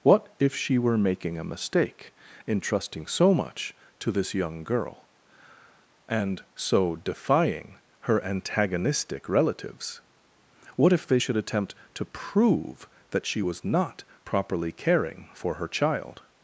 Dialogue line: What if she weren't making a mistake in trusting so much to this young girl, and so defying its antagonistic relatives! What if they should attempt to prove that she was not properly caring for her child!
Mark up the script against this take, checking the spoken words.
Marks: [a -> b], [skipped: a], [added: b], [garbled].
What if she [weren't -> were] making a mistake in trusting so much to this young girl, and so defying [its -> her] antagonistic relatives! What if they should attempt to prove that she was not properly caring for her child!